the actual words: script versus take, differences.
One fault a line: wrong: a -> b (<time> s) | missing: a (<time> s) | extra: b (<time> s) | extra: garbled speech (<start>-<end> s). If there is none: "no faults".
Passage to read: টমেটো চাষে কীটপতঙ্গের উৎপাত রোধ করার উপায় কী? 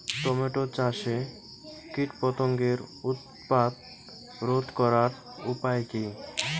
no faults